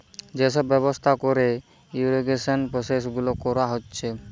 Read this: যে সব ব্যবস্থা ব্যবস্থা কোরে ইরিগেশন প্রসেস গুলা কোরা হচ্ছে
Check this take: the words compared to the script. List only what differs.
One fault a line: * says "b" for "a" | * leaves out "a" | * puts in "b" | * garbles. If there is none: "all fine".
* leaves out "ব্যবস্থা"